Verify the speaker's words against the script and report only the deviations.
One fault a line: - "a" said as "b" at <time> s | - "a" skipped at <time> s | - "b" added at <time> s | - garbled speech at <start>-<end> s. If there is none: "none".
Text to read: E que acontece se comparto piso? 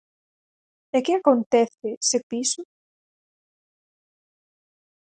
- "comparto" skipped at 2.2 s